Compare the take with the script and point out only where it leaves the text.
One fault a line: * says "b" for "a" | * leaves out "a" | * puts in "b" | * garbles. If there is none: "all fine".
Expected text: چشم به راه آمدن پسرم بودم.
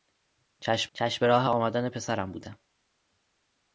* puts in "چشم"